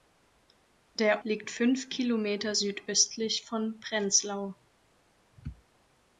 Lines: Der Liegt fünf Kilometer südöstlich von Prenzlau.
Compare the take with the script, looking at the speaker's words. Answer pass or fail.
pass